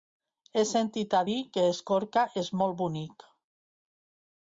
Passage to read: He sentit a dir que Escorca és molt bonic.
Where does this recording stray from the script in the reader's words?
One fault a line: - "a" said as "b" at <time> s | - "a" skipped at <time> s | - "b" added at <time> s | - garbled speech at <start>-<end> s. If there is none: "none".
none